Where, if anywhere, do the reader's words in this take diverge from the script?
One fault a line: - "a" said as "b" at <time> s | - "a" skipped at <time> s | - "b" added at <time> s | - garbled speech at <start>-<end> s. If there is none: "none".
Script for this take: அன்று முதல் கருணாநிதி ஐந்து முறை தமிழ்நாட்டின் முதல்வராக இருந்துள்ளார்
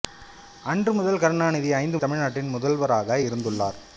- "முறை" skipped at 2.0 s